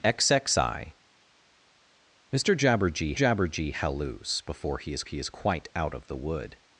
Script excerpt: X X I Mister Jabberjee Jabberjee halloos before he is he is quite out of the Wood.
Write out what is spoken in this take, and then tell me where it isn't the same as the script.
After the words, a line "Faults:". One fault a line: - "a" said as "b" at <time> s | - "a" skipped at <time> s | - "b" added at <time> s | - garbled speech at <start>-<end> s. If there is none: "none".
X X I Mister Jabberjee Jabberjee halloos before he is he is quite out of the Wood.
Faults:
none